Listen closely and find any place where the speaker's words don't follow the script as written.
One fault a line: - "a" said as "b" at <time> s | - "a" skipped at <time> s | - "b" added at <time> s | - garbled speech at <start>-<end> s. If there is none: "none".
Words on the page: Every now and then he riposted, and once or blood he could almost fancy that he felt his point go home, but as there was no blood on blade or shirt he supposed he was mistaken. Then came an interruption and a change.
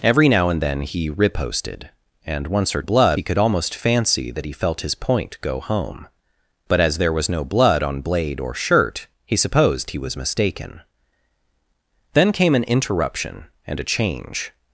none